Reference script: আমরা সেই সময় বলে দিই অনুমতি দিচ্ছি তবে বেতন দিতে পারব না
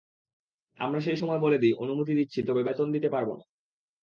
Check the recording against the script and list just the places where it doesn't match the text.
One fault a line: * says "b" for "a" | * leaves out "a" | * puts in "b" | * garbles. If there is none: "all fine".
all fine